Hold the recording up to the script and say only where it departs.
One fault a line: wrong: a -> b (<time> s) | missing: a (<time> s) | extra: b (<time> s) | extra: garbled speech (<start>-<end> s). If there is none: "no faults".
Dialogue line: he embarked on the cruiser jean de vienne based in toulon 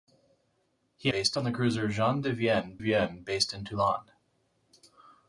wrong: embarked -> based (1.1 s)
extra: vienne (2.8 s)